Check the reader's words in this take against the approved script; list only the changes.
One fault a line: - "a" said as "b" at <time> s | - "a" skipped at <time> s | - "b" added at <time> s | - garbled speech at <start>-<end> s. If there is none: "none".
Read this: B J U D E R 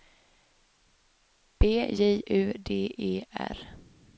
none